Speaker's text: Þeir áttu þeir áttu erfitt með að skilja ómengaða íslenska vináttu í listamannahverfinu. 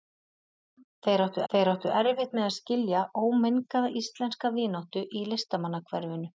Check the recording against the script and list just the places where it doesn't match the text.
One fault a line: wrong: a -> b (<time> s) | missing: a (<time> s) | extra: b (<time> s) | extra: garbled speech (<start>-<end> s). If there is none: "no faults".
no faults